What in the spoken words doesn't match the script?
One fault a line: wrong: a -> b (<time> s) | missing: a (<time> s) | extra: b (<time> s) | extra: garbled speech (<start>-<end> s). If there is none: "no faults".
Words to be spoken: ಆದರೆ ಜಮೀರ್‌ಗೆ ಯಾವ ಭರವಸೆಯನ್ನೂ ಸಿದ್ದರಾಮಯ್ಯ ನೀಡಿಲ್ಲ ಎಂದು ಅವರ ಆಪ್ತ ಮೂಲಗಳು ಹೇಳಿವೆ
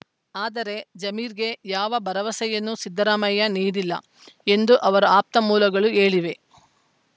no faults